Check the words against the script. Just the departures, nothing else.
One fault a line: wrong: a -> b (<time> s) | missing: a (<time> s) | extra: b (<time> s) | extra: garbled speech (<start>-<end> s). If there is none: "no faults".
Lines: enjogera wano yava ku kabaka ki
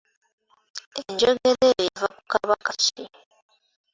wrong: wano -> eyo (1.7 s)